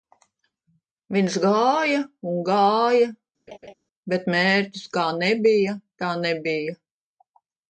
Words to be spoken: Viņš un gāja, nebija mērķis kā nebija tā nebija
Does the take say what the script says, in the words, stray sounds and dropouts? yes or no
no